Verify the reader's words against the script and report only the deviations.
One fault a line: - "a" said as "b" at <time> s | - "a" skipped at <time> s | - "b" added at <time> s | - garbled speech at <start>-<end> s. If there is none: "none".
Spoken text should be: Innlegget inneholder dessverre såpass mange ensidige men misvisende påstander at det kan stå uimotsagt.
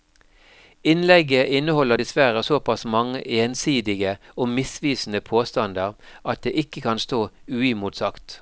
- "men" said as "og" at 4.4 s
- "ikke" added at 6.5 s